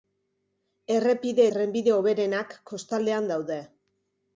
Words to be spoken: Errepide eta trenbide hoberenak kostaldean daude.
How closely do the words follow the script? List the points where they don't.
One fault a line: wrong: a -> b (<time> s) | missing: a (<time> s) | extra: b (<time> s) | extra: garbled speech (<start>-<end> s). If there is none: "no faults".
missing: eta (1.4 s)